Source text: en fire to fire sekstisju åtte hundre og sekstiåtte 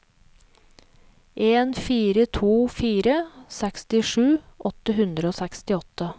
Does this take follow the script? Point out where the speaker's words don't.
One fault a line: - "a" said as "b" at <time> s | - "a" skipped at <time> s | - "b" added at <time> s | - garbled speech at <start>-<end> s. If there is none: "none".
none